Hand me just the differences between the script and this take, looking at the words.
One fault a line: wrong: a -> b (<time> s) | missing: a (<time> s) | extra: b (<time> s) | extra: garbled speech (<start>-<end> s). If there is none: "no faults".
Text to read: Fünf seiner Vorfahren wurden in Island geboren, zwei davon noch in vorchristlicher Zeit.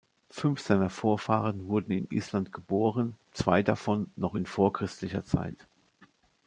no faults